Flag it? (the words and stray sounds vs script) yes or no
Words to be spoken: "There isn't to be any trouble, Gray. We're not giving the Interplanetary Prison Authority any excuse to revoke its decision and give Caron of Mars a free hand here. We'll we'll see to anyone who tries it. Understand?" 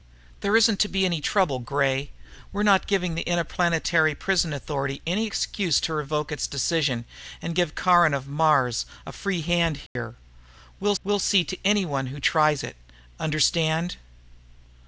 yes